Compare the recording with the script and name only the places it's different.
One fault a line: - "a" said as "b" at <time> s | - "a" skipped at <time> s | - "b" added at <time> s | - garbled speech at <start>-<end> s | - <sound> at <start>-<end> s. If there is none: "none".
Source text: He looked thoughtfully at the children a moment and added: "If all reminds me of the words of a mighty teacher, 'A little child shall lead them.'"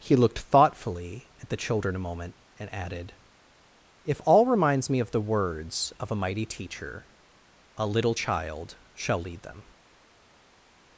none